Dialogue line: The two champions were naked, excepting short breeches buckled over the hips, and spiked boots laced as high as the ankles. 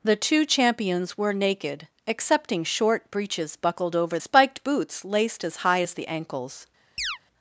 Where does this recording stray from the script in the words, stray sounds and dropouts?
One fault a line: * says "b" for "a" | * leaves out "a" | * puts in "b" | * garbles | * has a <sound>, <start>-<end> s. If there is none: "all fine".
* leaves out "the hips and"
* has a chirp, 7.0-7.2 s